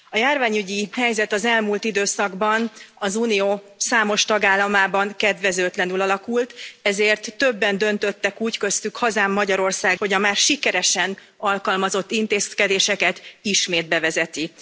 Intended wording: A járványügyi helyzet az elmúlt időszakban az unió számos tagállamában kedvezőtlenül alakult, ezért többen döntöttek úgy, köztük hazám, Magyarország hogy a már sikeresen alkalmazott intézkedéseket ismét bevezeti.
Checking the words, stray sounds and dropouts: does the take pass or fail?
pass